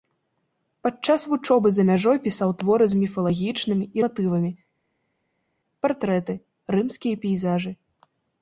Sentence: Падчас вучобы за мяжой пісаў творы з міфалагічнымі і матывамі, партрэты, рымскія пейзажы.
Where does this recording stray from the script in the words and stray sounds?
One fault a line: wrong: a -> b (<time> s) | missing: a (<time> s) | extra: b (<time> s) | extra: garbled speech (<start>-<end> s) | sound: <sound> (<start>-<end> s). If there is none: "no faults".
no faults